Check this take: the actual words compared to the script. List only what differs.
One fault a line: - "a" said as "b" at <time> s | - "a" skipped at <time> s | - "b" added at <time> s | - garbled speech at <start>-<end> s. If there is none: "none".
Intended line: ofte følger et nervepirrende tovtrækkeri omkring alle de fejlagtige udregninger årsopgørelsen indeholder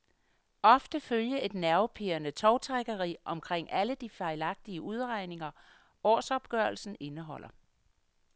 none